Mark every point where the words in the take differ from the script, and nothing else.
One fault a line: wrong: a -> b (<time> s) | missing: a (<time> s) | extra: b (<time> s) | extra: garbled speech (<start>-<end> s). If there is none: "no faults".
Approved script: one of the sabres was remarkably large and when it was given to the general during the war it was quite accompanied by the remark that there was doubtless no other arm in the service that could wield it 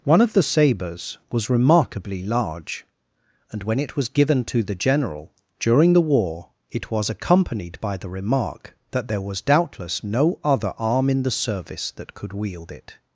missing: quite (7.1 s)